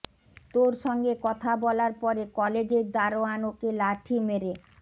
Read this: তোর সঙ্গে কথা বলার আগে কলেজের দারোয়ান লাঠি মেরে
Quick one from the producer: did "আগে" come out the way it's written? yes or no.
no